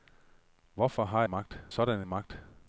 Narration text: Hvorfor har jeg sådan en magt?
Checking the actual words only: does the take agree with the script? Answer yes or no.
no